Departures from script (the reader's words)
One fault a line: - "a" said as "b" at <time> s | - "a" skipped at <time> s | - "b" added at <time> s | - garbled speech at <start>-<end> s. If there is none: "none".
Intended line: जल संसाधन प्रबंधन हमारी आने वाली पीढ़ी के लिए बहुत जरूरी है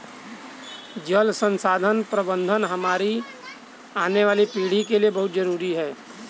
none